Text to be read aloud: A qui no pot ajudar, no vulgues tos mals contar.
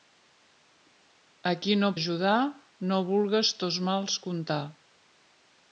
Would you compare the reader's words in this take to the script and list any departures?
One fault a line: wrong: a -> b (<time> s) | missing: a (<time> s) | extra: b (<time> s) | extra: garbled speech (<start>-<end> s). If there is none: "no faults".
missing: pot (1.9 s)